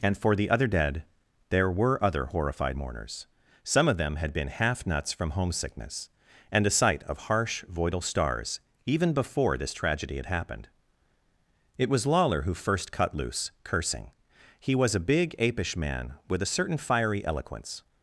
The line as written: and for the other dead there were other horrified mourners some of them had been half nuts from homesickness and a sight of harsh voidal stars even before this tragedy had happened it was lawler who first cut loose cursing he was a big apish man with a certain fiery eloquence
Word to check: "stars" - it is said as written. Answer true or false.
true